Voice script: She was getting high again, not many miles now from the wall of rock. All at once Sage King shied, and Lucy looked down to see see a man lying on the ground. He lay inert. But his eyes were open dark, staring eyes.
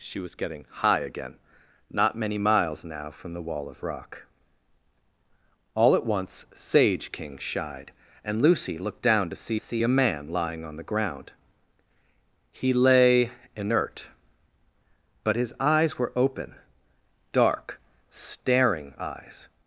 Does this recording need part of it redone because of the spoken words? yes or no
no